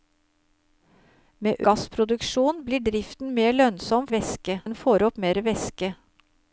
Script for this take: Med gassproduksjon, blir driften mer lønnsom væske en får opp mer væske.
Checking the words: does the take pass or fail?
pass